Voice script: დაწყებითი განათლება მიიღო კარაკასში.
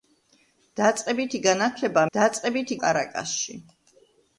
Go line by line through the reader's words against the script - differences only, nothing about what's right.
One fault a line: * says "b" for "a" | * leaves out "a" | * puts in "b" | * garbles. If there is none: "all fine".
* says "დაწყებითი" for "მიიღო"